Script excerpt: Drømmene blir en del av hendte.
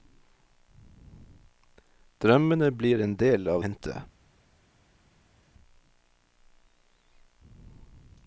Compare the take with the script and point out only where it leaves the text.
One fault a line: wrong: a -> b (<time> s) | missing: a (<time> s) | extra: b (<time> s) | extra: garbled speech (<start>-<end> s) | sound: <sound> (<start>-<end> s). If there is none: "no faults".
no faults